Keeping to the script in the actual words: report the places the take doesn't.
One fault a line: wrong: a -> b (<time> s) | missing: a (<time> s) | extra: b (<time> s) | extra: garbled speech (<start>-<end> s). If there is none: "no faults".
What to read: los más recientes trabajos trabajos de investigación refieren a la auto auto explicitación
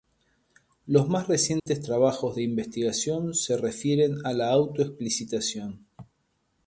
missing: trabajos (2.4 s)
extra: se (3.3 s)
missing: auto (4.8 s)